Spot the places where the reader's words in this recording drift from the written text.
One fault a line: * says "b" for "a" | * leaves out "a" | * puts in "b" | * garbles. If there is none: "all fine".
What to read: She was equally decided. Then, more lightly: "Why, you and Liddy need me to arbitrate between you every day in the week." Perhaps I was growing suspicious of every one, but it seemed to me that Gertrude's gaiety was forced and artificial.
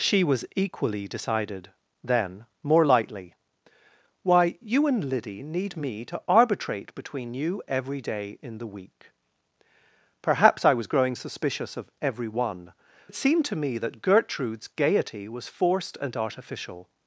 * leaves out "but"